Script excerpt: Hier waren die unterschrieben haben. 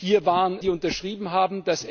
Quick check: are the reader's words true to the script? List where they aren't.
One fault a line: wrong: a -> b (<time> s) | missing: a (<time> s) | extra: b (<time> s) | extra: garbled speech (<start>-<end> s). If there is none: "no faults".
no faults